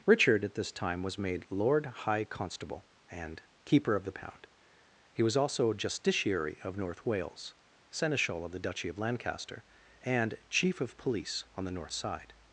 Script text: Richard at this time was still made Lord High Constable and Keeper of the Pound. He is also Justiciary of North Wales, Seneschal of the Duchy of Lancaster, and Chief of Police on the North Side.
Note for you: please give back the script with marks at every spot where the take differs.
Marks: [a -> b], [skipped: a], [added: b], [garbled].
Richard at this time was [skipped: still] made Lord High Constable and Keeper of the Pound. He [is -> was] also Justiciary of North Wales, Seneschal of the Duchy of Lancaster, and Chief of Police on the North Side.